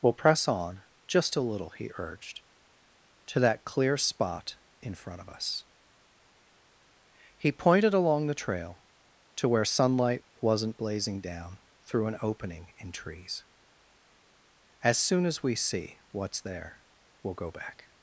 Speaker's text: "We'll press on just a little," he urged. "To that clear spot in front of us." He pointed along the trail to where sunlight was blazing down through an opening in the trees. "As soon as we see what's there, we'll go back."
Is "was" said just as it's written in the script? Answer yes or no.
no